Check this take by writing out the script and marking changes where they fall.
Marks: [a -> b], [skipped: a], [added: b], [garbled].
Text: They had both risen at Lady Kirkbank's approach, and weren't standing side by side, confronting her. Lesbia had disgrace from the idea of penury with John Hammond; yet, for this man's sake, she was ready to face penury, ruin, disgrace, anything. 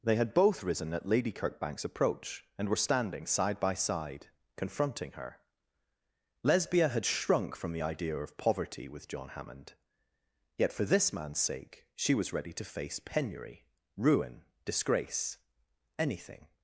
They had both risen at Lady Kirkbank's approach, and [weren't -> were] standing side by side, confronting her. Lesbia had [disgrace -> shrunk] from the idea of [penury -> poverty] with John Hammond; yet, for this man's sake, she was ready to face penury, ruin, disgrace, anything.